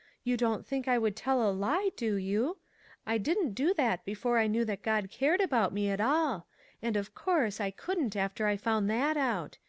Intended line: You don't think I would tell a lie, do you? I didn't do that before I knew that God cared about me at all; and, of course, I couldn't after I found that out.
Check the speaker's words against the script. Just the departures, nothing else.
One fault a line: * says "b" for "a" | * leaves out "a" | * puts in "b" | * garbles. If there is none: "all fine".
all fine